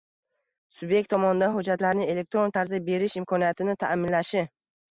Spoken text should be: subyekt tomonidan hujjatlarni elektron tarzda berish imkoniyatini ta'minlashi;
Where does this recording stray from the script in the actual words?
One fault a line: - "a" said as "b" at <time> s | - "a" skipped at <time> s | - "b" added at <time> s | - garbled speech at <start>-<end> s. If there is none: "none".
none